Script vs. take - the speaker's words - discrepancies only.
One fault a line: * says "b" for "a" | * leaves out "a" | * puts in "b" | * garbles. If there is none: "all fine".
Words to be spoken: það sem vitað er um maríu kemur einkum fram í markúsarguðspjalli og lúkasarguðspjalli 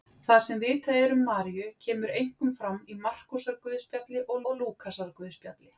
* puts in "og"